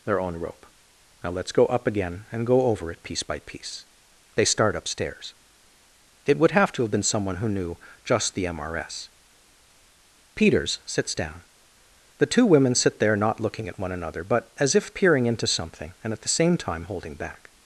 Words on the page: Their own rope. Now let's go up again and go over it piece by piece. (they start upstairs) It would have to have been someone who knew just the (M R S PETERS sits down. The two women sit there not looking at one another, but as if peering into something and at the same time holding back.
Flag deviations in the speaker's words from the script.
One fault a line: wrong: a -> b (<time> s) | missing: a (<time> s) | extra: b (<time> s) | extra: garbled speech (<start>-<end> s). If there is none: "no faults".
no faults